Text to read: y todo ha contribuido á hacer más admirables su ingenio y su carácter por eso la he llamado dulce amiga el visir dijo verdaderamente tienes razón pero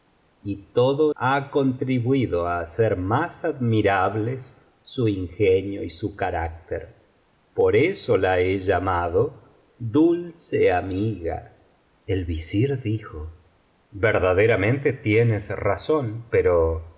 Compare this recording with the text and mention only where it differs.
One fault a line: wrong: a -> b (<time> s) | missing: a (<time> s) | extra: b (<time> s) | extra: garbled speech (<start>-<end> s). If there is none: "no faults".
no faults